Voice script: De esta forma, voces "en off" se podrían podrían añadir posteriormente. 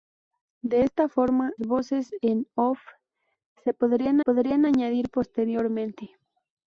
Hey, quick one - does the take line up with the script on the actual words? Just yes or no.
yes